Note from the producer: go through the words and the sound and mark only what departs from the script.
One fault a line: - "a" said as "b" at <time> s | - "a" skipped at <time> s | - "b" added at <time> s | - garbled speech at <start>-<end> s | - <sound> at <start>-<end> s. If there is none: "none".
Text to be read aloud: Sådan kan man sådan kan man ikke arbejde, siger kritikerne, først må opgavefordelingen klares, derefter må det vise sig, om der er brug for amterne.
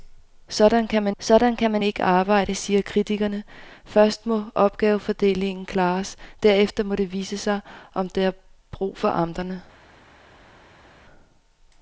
none